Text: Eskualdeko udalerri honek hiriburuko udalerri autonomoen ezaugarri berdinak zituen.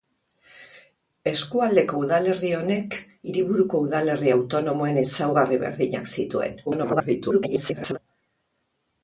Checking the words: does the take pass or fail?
fail